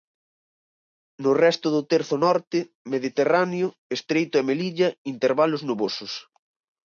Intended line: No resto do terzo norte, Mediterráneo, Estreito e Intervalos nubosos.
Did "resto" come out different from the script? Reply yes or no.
no